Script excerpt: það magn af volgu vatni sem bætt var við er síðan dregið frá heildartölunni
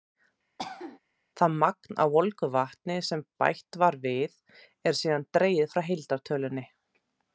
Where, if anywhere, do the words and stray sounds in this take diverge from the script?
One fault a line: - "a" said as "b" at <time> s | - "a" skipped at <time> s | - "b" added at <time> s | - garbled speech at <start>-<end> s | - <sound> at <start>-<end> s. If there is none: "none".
- cough at 0.6-1.0 s